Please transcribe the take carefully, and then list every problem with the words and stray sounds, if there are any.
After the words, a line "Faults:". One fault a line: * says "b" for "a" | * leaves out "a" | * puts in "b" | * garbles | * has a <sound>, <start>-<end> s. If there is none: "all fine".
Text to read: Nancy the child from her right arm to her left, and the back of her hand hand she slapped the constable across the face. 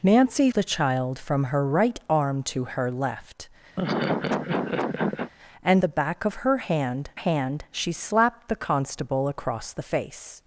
Nancy the child from her right arm to her left, and the back of her hand hand she slapped the constable across the face.
Faults:
* has a laugh, 3.8-5.3 s